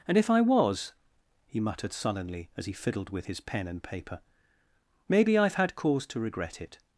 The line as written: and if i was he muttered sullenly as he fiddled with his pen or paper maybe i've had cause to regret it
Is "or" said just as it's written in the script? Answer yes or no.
no